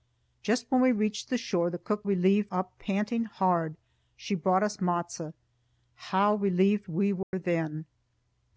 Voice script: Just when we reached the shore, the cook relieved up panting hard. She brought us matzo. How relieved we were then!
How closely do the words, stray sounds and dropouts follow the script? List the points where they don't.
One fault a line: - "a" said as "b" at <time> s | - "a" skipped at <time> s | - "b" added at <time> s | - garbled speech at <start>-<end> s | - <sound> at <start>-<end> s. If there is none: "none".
- dropout at 7.2-7.3 s